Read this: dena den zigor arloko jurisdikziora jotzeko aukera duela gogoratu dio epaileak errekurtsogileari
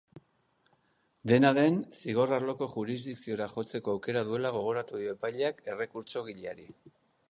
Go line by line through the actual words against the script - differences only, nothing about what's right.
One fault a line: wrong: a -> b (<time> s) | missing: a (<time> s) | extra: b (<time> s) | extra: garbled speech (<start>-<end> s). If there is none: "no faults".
no faults